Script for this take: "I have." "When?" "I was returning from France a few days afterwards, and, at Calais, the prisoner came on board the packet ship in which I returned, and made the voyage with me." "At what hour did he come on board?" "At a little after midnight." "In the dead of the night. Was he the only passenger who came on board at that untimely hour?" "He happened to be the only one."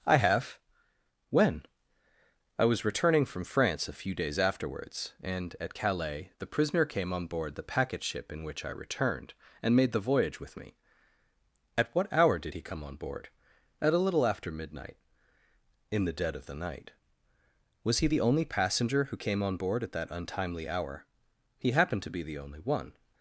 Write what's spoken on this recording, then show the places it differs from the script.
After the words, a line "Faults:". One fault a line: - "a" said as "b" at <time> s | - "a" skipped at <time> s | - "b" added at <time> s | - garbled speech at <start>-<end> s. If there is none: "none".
"I have." "When?" "I was returning from France a few days afterwards, and, at Calais, the prisoner came on board the packet ship in which I returned, and made the voyage with me." "At what hour did he come on board?" "At a little after midnight." "In the dead of the night. Was he the only passenger who came on board at that untimely hour?" "He happened to be the only one."
Faults:
none